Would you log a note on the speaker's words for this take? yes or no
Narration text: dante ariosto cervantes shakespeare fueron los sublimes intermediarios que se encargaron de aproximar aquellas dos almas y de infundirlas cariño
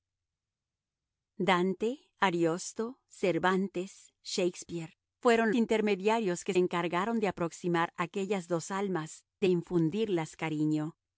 yes